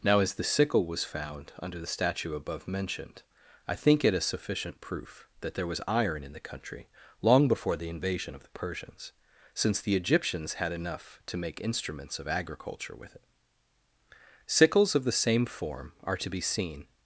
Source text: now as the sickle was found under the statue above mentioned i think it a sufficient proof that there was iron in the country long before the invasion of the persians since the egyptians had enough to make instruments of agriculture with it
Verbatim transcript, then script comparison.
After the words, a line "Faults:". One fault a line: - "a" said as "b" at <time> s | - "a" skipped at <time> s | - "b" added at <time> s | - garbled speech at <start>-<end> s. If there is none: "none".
now as the sickle was found under the statue above mentioned i think it a sufficient proof that there was iron in the country long before the invasion of the persians since the egyptians had enough to make instruments of agriculture with it sickles of the same form are to be seen
Faults:
- "sickles of the same form are to be seen" added at 14.5 s